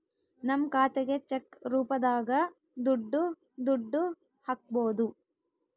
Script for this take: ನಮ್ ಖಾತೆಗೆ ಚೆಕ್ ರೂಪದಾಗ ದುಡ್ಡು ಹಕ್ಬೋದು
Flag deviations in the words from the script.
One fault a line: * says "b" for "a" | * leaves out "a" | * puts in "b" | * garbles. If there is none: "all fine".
* puts in "ದುಡ್ಡು"